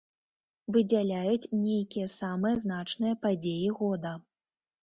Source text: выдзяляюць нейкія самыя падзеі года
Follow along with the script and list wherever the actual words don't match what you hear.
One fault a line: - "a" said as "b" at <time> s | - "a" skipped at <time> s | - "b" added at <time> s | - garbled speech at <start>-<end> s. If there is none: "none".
- "значныя" added at 2.6 s